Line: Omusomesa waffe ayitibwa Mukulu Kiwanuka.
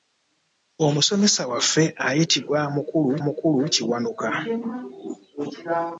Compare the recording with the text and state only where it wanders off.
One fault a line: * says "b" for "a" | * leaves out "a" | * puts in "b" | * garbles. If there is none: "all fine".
* puts in "Mukulu"